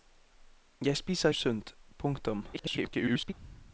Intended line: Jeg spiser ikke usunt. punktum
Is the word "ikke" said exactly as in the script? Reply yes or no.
no